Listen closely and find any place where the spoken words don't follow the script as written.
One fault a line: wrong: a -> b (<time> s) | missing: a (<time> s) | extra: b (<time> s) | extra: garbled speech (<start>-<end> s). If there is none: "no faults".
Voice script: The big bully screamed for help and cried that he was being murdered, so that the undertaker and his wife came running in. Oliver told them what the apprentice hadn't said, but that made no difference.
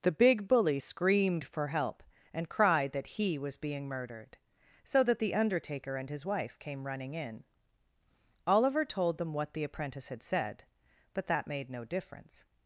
wrong: hadn't -> had (10.1 s)